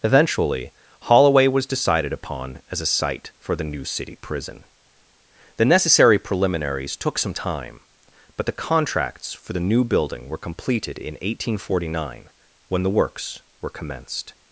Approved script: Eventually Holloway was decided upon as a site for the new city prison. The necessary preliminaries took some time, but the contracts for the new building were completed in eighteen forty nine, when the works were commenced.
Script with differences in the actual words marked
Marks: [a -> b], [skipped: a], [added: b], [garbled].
Eventually Holloway was decided upon as a site for the new city prison. The necessary preliminaries took some time, but the contracts for the new building were completed in eighteen forty nine, when the works were commenced.